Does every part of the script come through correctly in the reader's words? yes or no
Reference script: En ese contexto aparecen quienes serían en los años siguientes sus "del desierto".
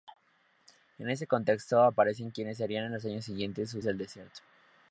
yes